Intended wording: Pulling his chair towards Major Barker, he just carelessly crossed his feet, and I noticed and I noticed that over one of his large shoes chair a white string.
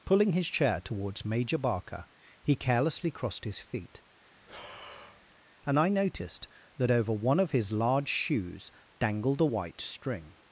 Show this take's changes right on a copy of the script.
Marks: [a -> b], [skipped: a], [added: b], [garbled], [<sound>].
Pulling his chair towards Major Barker, he [skipped: just] carelessly crossed his feet, [breath] and I noticed [skipped: and I noticed] that over one of his large shoes [chair -> dangled] a white string.